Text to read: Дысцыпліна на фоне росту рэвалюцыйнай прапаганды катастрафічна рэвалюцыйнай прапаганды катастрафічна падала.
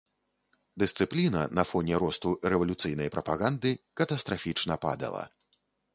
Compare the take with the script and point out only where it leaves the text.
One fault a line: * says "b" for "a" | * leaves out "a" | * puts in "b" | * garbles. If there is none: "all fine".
* leaves out "рэвалюцыйнай прапаганды катастрафічна"